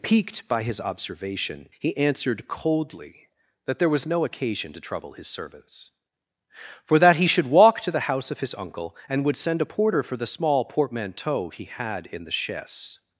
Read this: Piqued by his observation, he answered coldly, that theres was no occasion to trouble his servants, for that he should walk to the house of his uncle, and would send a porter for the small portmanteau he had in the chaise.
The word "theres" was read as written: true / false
false